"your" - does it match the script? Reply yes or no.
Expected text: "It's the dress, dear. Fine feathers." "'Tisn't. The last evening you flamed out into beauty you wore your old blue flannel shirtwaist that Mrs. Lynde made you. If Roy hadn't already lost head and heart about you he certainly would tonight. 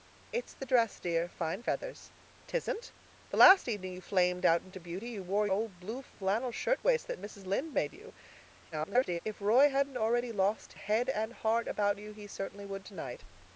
no